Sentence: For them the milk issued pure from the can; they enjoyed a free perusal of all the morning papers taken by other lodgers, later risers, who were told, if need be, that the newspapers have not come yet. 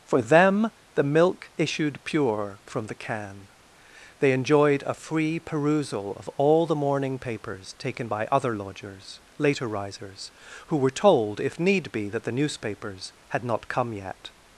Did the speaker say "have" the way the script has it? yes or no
no